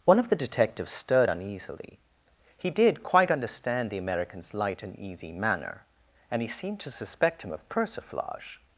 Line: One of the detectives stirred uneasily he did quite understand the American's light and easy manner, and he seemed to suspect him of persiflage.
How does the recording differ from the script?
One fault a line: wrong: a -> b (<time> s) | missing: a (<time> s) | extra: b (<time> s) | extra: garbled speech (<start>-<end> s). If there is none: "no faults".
no faults